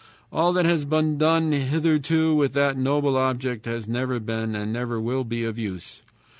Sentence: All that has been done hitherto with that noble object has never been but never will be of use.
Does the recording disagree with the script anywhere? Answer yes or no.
yes